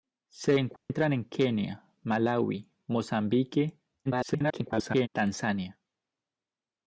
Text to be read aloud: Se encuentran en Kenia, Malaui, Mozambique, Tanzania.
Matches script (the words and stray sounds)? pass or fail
fail